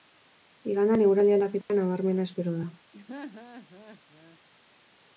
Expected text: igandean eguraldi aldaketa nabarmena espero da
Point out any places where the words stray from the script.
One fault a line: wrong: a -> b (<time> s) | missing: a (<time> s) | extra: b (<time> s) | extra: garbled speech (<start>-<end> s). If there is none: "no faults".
no faults